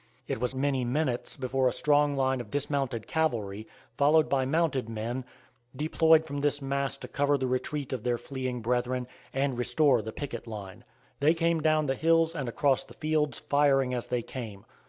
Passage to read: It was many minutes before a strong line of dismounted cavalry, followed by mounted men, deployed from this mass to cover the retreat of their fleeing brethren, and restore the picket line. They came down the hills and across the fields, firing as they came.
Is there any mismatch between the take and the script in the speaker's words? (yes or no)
no